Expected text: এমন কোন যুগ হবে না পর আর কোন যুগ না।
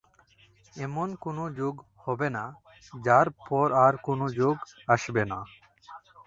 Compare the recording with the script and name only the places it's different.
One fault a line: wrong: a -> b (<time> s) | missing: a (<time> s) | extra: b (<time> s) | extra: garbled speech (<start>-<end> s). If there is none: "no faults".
extra: যার (2.9 s)
extra: আসবে (4.9 s)